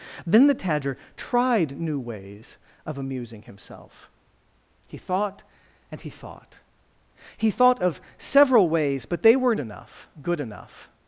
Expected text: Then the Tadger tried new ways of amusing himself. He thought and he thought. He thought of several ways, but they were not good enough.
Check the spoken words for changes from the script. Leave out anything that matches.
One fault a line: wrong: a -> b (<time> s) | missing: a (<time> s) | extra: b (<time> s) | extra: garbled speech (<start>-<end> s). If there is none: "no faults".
wrong: not -> enough (9.6 s)